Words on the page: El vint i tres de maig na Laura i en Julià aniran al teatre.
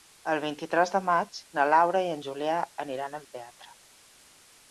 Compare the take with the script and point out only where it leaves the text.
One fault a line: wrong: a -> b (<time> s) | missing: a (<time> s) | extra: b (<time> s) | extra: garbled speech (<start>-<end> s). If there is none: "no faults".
no faults